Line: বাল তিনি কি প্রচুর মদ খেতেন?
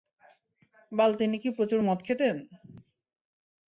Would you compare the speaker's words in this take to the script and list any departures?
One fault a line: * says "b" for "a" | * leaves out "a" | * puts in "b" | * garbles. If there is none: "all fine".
all fine